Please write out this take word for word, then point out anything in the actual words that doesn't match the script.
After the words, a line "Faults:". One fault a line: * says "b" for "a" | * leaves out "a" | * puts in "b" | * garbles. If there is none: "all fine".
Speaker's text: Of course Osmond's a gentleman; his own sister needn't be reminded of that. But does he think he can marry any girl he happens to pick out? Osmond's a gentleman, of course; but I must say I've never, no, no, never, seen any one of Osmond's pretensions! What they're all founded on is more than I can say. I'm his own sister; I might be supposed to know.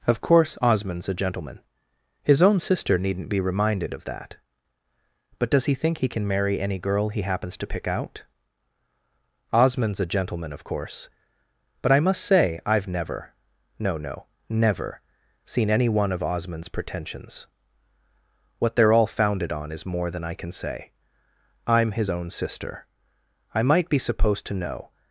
Of course Osmond's a gentleman; his own sister needn't be reminded of that. But does he think he can marry any girl he happens to pick out? Osmond's a gentleman, of course; but I must say I've never, no, no, never, seen any one of Osmond's pretensions! What they're all founded on is more than I can say. I'm his own sister; I might be supposed to know.
Faults:
all fine